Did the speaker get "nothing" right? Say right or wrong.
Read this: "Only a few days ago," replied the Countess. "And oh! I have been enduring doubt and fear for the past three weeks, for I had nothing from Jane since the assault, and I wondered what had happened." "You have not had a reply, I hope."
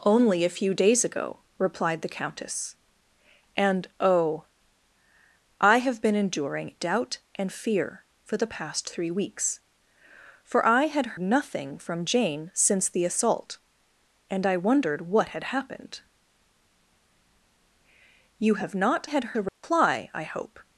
right